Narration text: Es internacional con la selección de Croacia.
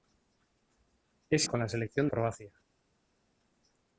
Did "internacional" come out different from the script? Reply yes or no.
yes